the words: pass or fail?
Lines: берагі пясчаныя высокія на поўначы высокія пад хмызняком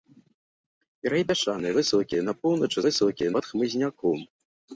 pass